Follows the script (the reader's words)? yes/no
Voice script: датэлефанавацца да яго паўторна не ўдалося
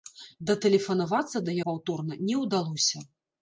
no